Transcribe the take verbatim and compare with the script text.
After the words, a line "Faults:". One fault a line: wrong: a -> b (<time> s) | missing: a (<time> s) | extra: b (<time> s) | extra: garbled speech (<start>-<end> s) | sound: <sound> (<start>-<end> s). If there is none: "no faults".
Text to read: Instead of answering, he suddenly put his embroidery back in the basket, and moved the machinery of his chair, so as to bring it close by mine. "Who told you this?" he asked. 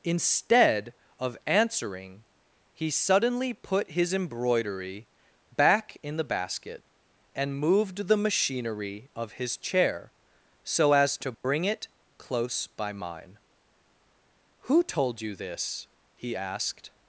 Instead of answering, he suddenly put his embroidery back in the basket, and moved the machinery of his chair, so as to bring it close by mine. "Who told you this?" he asked.
Faults:
sound: dropout (11.3-11.4 s)